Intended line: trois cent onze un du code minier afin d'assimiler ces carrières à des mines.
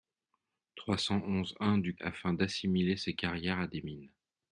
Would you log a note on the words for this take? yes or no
yes